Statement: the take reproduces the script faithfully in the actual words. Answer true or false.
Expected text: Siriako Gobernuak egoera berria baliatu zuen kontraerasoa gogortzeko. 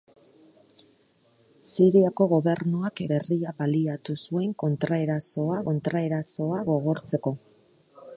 false